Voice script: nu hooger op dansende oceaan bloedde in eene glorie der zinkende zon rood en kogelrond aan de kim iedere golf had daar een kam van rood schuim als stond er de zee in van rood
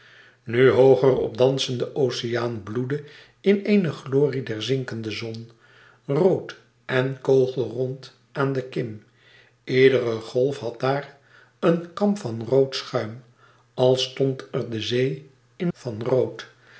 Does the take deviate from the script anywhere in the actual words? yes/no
no